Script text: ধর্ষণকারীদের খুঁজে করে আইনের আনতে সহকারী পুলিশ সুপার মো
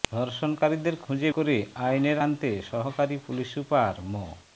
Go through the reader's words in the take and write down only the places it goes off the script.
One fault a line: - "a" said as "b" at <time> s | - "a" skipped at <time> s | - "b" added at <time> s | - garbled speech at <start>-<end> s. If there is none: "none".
none